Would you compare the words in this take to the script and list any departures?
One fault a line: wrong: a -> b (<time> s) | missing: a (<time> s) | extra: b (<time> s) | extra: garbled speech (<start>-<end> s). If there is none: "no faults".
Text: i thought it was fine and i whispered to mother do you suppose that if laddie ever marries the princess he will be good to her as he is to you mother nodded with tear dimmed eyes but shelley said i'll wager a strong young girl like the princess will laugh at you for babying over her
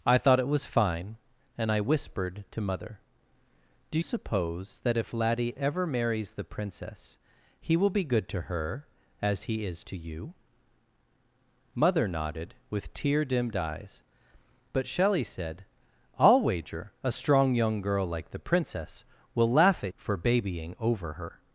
missing: you (4.0 s)
missing: you (19.9 s)